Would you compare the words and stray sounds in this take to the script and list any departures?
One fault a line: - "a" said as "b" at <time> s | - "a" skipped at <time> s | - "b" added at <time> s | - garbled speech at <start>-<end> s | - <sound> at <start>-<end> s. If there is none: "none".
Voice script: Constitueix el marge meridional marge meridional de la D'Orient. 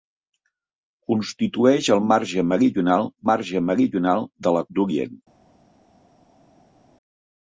none